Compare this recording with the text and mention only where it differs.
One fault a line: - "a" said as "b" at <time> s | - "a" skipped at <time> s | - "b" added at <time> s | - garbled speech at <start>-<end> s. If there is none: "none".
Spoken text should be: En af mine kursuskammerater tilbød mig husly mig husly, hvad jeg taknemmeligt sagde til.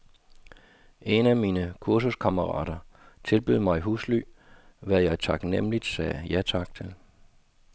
- "mig husly" skipped at 4.2 s
- "ja tak" added at 6.3 s